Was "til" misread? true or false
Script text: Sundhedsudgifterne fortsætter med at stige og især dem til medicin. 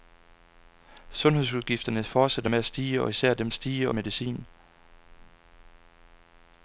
true